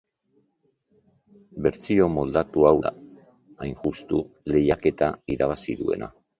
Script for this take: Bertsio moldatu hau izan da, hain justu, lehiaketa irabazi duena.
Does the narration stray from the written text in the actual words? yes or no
yes